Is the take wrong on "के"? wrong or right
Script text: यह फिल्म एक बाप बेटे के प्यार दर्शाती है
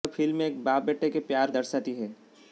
right